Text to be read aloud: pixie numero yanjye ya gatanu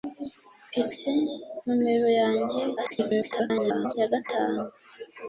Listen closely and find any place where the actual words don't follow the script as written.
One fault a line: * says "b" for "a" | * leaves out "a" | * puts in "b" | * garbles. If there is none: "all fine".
* garbles